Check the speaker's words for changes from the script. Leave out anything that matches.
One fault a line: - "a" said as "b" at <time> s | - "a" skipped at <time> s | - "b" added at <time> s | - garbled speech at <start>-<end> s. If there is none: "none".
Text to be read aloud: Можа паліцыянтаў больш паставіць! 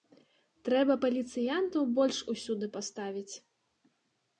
- "Можа" said as "Трэба" at 0.7 s
- "усюды" added at 2.4 s